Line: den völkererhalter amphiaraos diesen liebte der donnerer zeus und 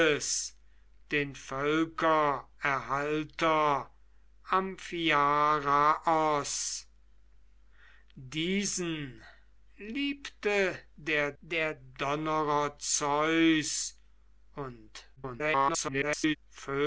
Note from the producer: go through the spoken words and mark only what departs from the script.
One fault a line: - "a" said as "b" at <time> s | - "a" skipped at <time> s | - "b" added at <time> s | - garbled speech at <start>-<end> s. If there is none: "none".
- "der" added at 11.4 s
- garbled speech at 15.2-16.4 s